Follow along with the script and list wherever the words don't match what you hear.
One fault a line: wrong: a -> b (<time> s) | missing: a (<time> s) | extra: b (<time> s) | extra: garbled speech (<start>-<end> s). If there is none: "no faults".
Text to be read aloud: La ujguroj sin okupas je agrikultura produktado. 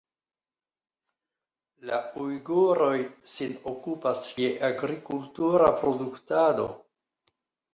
no faults